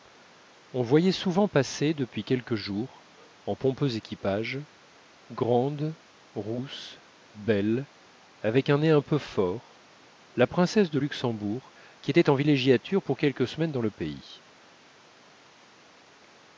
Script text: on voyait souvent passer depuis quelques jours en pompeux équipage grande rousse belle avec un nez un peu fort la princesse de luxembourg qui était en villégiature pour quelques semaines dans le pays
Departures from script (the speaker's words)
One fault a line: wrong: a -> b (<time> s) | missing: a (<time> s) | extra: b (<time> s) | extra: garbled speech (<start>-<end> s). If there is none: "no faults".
no faults